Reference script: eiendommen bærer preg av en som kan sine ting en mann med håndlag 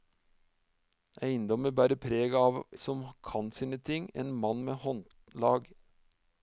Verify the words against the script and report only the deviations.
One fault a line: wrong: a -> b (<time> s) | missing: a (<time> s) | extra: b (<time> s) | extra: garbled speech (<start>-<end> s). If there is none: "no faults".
missing: en (2.6 s)